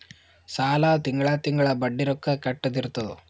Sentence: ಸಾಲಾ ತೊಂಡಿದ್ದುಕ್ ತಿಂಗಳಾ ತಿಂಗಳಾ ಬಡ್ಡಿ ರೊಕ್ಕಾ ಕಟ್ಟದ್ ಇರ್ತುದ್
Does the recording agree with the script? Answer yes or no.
no